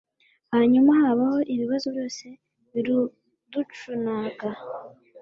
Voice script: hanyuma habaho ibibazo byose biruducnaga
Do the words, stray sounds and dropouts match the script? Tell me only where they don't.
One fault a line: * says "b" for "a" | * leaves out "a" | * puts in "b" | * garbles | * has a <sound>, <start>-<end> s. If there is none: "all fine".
all fine